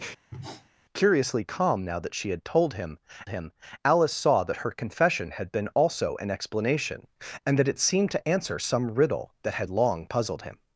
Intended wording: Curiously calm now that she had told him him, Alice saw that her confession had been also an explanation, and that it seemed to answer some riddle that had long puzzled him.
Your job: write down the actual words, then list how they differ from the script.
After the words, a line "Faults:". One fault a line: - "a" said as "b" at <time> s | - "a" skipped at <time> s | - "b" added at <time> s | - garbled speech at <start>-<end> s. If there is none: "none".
Curiously calm now that she had told him him, Alice saw that her confession had been also an explanation, and that it seemed to answer some riddle that had long puzzled him.
Faults:
none